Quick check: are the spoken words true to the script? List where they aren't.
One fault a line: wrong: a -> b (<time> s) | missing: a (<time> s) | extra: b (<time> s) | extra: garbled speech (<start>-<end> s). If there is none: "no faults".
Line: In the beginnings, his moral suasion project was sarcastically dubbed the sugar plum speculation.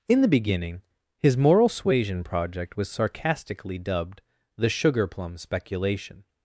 wrong: beginnings -> beginning (0.3 s)